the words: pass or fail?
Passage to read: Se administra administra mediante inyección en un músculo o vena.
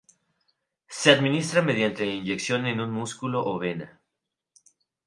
fail